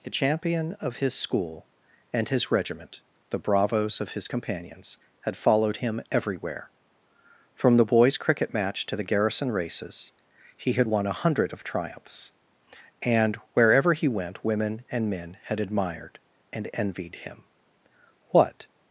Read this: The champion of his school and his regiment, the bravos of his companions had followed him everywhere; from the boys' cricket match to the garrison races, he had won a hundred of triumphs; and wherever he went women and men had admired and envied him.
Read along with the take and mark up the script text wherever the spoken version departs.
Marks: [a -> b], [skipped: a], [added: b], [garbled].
The champion of his school and his regiment, the bravos of his companions had followed him everywhere; from the boys' cricket match to the garrison races, he had won a hundred of triumphs; and wherever he went women and men had admired and envied him. [added: What]